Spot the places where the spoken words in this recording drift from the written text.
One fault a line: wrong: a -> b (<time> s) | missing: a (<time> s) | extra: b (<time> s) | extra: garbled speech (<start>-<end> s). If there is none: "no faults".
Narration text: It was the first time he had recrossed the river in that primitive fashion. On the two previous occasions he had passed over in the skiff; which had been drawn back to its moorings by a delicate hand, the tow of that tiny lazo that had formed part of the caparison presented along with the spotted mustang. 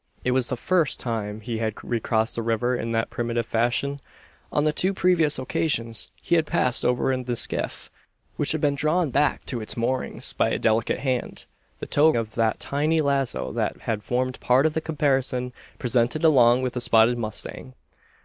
no faults